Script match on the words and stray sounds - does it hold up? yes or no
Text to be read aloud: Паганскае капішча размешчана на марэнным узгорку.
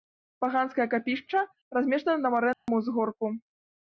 no